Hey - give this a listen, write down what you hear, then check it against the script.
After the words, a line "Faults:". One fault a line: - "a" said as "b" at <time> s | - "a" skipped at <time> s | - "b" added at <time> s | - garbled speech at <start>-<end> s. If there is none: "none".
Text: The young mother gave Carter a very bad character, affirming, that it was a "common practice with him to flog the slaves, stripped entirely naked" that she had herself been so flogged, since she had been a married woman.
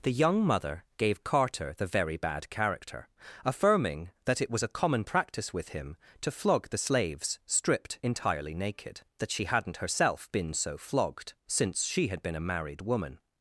The young mother gave Carter the very bad character, affirming, that it was a "common practice with him to flog the slaves, stripped entirely naked" that she hadn't herself been so flogged, since she had been a married woman.
Faults:
- "a" said as "the" at 1.8 s
- "had" said as "hadn't" at 9.5 s